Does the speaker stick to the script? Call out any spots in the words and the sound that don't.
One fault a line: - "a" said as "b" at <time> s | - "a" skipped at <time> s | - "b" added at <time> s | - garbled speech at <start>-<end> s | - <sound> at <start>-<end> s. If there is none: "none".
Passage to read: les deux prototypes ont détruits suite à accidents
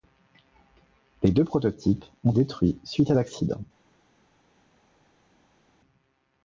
none